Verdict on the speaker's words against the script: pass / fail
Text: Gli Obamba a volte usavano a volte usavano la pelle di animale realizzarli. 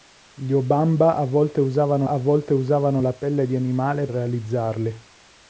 pass